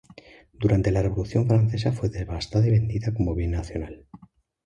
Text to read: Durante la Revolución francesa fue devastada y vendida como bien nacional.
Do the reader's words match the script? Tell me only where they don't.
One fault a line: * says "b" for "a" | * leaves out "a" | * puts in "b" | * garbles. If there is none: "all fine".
all fine